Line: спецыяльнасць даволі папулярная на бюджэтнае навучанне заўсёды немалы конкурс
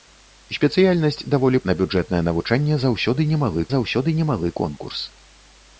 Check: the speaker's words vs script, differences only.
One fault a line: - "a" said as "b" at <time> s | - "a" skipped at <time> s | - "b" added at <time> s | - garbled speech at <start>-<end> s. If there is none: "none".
- "папулярная" skipped at 1.6 s
- "заўсёды немалы" added at 3.8 s